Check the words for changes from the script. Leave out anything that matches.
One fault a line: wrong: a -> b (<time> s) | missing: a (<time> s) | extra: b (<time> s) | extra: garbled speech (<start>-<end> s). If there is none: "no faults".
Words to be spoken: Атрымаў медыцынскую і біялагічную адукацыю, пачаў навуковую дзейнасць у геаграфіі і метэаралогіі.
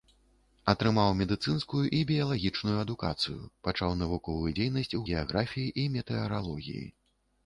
no faults